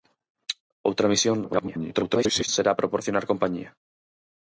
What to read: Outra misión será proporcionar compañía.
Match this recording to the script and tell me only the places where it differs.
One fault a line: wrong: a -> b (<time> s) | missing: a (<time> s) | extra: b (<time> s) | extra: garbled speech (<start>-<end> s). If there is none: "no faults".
extra: garbled speech (1.4-2.5 s)